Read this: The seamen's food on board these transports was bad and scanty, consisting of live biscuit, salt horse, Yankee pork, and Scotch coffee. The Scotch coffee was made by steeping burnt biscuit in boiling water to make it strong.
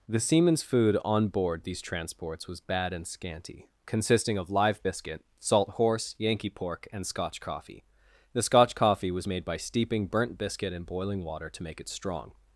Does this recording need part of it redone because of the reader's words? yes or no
no